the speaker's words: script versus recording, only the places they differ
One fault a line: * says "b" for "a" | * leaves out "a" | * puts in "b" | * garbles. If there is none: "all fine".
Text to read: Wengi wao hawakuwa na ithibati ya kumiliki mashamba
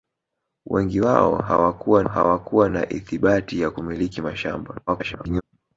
* puts in "hawakuwa"
* garbles